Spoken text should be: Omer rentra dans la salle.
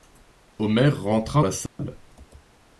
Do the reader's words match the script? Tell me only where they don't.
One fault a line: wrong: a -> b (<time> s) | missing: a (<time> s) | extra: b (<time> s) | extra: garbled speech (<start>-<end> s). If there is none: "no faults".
missing: dans (1.4 s)